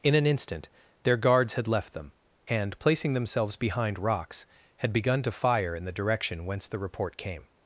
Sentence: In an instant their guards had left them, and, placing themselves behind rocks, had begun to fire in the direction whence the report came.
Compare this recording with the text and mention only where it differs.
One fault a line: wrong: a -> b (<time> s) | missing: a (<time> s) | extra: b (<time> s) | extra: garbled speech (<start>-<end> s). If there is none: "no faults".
no faults